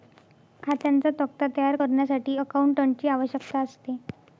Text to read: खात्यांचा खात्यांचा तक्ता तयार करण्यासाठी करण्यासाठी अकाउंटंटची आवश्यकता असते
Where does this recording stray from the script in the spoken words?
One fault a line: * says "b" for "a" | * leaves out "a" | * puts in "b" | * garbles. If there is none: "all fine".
* leaves out "खात्यांचा"
* leaves out "करण्यासाठी"